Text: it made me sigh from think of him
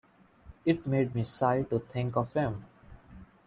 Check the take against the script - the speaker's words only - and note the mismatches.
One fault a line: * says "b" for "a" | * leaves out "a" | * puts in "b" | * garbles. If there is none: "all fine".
* says "to" for "from"